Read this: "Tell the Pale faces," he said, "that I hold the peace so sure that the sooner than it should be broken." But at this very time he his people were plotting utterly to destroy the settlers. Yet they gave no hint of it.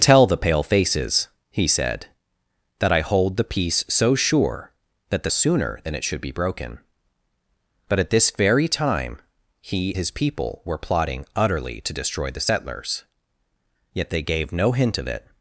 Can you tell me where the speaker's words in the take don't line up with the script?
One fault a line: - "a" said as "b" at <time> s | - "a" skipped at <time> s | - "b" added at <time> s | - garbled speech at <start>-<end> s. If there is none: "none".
none